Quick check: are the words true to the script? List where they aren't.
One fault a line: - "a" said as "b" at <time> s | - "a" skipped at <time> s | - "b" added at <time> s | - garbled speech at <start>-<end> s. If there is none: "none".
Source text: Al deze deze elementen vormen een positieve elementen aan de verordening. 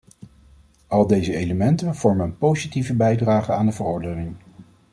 - "deze" skipped at 1.4 s
- "elementen" said as "bijdrage" at 3.0 s